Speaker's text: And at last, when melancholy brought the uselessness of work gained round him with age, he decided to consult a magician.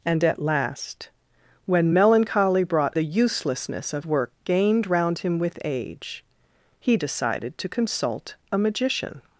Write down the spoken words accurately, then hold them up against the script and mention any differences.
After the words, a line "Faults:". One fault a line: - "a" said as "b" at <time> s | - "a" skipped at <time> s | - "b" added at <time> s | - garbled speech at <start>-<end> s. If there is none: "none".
And at last, when melancholy brought the uselessness of work gained round him with age, he decided to consult a magician.
Faults:
none